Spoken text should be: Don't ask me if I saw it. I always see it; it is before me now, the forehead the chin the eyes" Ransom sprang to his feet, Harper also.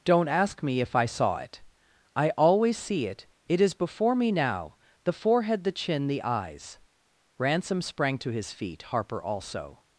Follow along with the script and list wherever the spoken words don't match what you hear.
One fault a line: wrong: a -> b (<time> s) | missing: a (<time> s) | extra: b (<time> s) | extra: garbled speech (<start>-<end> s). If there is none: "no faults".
no faults